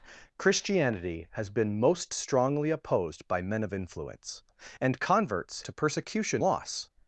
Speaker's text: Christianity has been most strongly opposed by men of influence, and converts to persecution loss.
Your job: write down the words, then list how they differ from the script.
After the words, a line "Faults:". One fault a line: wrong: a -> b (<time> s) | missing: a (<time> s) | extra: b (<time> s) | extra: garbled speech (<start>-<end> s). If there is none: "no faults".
Christianity has been most strongly opposed by men of influence, and converts to persecution loss.
Faults:
no faults